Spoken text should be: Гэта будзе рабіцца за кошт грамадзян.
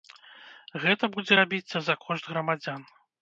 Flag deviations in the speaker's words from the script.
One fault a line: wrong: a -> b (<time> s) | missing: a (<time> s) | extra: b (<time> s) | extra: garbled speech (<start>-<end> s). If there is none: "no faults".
no faults